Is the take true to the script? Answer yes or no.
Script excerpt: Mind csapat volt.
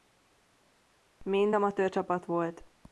no